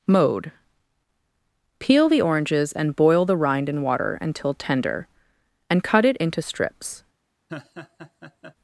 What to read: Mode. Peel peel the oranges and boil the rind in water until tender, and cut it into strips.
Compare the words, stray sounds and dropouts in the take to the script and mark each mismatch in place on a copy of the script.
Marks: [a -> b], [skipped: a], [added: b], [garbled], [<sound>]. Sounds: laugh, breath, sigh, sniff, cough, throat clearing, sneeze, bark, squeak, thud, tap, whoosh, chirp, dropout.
Mode. Peel [skipped: peel] the oranges and boil the rind in water until tender, and cut it into strips. [laugh]